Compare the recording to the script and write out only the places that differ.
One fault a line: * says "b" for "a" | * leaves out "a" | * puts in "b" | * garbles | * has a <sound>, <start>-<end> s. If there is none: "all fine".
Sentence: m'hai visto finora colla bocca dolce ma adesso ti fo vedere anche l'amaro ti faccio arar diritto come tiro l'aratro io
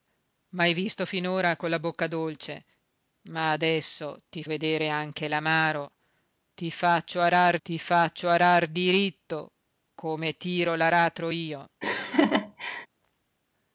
* leaves out "fo"
* puts in "ti faccio arar"
* has a laugh, 11.8-12.9 s